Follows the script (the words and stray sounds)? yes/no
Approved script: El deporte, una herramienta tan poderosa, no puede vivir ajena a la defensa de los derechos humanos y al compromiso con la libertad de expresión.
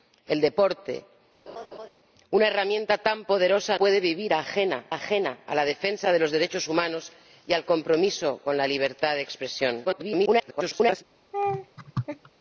no